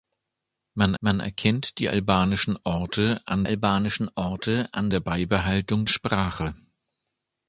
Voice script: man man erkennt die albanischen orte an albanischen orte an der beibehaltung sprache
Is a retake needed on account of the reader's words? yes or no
no